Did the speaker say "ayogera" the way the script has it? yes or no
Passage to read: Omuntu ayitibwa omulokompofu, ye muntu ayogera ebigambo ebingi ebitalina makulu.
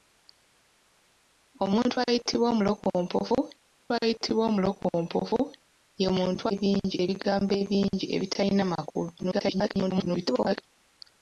no